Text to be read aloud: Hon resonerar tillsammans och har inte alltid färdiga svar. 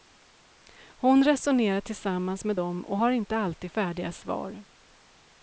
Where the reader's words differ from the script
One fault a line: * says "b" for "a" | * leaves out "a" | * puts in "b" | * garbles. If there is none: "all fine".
* puts in "med dem"